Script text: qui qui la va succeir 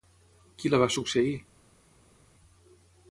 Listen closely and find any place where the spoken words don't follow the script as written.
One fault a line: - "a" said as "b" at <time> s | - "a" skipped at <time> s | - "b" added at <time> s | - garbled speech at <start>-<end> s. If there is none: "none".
- "qui" skipped at 0.7 s